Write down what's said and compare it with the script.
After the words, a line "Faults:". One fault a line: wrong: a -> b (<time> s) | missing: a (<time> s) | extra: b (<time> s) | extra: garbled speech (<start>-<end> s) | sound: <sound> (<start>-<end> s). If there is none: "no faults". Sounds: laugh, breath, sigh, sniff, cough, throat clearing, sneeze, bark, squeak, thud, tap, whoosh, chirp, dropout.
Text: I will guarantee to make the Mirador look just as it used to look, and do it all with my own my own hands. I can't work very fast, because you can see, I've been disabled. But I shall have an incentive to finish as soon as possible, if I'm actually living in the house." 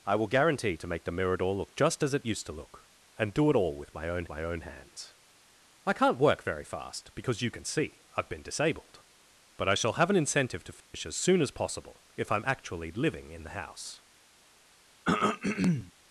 I will guarantee to make the Mirador look just as it used to look, and do it all with my own my own hands. I can't work very fast, because you can see, I've been disabled. But I shall have an incentive to finish as soon as possible, if I'm actually living in the house."
Faults:
sound: dropout (10.8-10.9 s)
sound: throat clearing (15.0-15.9 s)